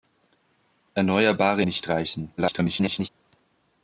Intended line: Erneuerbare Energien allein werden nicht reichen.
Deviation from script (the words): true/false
true